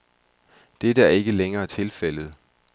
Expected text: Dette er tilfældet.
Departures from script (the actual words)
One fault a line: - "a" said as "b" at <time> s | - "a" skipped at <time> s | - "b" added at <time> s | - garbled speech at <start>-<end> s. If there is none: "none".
- "ikke længere" added at 1.1 s